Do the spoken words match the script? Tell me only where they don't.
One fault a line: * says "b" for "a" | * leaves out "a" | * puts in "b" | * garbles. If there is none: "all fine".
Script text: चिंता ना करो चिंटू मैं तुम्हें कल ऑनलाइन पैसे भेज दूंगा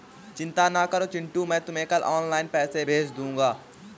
all fine